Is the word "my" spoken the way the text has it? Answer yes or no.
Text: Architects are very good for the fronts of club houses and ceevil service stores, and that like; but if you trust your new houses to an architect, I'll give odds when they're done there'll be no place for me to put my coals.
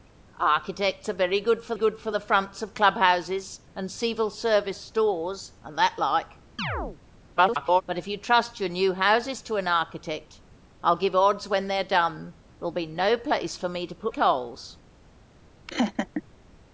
no